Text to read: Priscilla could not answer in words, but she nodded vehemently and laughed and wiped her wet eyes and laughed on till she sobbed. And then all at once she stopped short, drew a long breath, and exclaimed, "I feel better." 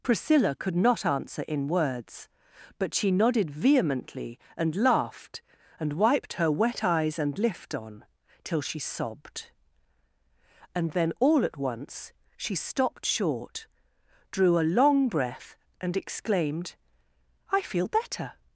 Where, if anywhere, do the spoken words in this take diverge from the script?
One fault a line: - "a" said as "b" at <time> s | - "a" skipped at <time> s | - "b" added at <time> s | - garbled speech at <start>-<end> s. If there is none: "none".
- "laughed" said as "lift" at 7.4 s